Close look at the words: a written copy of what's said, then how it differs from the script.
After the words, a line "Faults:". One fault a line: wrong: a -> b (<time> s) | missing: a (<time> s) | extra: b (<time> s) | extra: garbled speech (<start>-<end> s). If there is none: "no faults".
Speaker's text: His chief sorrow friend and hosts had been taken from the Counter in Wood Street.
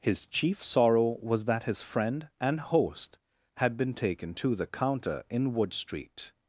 His chief sorrow was that his friend and host had been taken to the Counter in Wood Street.
Faults:
extra: was that his (1.2 s)
wrong: hosts -> host (2.6 s)
wrong: from -> to (4.3 s)